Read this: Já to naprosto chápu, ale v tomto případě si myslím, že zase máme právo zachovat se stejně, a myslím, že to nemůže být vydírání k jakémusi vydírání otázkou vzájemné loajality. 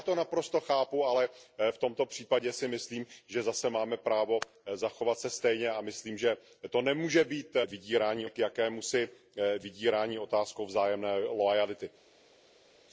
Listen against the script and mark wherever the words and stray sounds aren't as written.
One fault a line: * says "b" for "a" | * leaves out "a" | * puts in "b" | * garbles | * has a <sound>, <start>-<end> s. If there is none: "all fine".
all fine